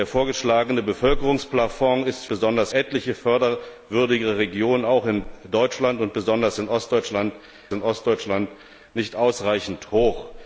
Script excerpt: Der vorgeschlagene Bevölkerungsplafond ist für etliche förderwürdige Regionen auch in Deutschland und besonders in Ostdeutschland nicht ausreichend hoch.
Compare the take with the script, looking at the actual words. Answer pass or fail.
fail